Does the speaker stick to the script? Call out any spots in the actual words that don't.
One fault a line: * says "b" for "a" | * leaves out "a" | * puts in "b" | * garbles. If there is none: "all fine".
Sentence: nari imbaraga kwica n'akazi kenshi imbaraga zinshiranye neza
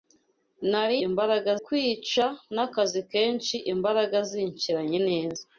all fine